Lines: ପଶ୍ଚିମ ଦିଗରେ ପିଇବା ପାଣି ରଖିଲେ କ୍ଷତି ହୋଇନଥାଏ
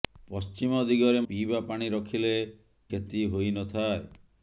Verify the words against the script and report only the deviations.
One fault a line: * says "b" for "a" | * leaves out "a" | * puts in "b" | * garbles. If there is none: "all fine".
all fine